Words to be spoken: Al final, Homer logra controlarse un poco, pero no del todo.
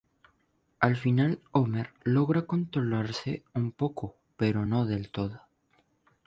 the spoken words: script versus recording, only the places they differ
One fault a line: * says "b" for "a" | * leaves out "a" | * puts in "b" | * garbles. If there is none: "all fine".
all fine